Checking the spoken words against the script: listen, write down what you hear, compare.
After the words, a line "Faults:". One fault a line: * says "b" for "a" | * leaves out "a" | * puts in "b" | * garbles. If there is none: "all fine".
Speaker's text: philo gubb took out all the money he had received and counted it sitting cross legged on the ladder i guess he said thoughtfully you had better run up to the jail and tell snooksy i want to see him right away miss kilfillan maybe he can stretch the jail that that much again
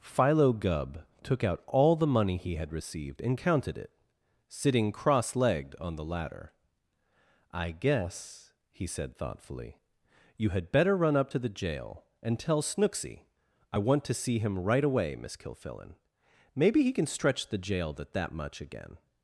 philo gubb took out all the money he had received and counted it sitting cross legged on the ladder i guess he said thoughtfully you had better run up to the jail and tell snooksy i want to see him right away miss kilfillan maybe he can stretch the jail that that much again
Faults:
all fine